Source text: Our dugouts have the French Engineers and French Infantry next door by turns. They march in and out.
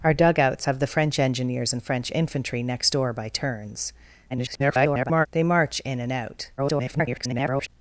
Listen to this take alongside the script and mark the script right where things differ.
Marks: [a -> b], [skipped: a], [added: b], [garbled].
Our dugouts have the French Engineers and French Infantry next door by turns. [garbled] They march in and out. [garbled]